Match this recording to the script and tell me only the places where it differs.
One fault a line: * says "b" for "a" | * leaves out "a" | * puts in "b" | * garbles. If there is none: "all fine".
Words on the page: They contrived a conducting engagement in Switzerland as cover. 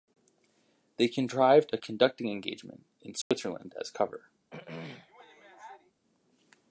all fine